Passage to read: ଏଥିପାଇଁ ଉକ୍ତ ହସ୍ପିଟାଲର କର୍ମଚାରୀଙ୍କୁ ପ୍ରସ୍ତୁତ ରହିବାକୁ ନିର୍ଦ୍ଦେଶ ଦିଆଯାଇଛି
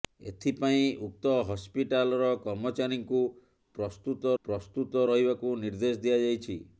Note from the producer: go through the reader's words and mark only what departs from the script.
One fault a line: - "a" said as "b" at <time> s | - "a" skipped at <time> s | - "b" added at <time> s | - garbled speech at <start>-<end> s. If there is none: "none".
- "ପ୍ରସ୍ତୁତ" added at 4.4 s